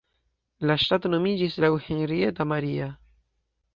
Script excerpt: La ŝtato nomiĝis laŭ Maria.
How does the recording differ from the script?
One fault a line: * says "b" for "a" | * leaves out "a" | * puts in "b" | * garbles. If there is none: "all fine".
* puts in "Henrietta"